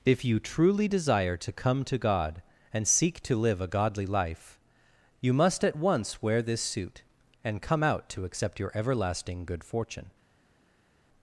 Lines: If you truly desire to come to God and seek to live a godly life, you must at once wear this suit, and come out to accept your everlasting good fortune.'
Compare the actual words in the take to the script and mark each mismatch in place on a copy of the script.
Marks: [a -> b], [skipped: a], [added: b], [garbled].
If you truly desire to come to God and seek to live a godly life, you must at once wear this suit, and come out to accept your everlasting good fortune.'